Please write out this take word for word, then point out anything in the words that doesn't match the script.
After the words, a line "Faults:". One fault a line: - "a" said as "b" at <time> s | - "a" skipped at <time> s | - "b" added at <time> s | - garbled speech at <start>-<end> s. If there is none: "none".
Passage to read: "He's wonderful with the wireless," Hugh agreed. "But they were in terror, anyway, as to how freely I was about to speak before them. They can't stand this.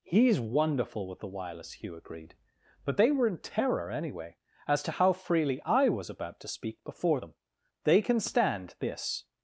"He's wonderful with the wireless," Hugh agreed. "But they were in terror, anyway, as to how freely I was about to speak before them. They can stand this.
Faults:
- "can't" said as "can" at 8.0 s